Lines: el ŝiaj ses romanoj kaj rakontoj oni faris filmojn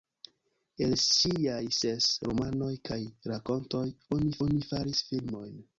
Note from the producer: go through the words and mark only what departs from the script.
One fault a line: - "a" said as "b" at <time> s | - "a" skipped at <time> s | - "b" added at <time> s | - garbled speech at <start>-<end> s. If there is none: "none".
- "oni" added at 4.5 s